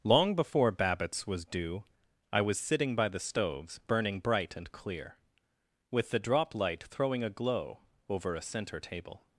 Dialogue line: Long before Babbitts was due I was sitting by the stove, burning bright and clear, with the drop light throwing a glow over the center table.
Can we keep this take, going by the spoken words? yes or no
no